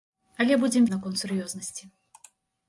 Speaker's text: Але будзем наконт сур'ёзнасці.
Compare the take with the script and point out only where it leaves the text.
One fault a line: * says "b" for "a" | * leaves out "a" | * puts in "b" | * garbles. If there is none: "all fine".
all fine